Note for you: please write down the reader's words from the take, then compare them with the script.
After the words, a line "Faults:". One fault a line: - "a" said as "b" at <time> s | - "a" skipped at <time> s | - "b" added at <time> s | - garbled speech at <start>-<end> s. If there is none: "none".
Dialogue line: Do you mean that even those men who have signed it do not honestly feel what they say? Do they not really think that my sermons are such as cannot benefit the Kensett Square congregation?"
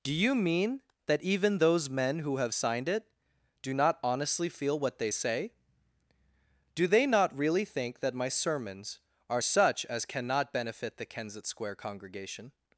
Do you mean that even those men who have signed it do not honestly feel what they say? Do they not really think that my sermons are such as cannot benefit the Kensett Square congregation?"
Faults:
none